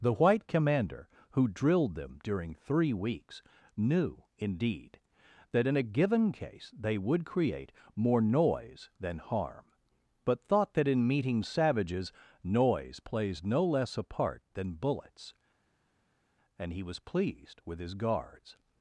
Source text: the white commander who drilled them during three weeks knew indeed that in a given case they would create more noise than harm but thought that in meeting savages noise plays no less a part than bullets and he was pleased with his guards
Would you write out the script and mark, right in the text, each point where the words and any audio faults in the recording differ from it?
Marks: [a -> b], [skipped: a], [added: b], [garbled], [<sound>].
the white commander who drilled them during three weeks knew indeed that in a given case they would create more noise than harm but thought that in meeting savages noise plays no less a part than bullets and he was pleased with his guards